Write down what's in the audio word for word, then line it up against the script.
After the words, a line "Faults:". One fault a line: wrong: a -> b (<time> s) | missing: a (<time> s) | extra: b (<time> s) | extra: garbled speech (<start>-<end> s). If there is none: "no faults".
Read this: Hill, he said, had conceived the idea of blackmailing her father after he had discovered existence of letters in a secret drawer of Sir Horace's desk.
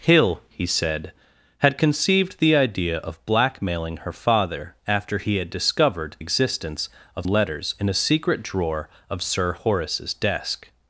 Hill, he said, had conceived the idea of blackmailing her father after he had discovered existence of letters in a secret drawer of Sir Horace's desk.
Faults:
no faults